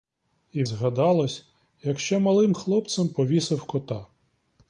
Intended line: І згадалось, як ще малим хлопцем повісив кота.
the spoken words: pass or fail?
pass